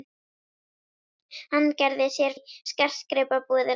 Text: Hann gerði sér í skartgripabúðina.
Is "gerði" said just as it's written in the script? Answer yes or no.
yes